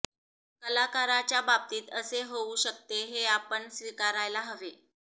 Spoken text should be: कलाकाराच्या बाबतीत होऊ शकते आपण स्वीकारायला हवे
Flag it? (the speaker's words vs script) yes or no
yes